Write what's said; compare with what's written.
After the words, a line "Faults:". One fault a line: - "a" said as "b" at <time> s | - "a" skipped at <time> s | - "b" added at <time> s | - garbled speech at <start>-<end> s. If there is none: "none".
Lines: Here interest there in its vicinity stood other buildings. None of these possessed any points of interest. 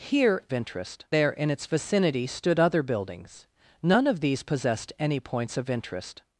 Here interest there in its vicinity stood other buildings. None of these possessed any points of interest.
Faults:
none